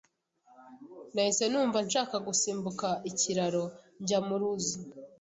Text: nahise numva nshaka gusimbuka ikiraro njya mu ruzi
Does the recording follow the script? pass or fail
pass